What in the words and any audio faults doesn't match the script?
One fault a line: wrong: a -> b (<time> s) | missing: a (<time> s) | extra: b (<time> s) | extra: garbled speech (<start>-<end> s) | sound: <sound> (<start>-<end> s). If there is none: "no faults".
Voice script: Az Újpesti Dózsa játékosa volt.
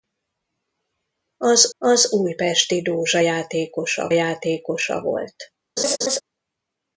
extra: az (1.8 s)
extra: játékosa (4.1 s)
sound: laugh (5.8-6.2 s)